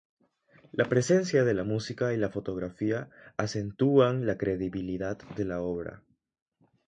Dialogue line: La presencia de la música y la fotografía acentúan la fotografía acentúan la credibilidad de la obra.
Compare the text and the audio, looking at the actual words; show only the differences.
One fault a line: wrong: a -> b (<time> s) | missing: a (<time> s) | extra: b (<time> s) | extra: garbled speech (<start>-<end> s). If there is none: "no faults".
missing: fotografía acentúan la (4.3 s)